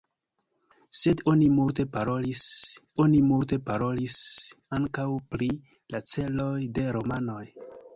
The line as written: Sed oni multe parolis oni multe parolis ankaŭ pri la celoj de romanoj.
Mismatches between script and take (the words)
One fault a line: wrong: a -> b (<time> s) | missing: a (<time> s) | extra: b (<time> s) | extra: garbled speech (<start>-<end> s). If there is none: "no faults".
no faults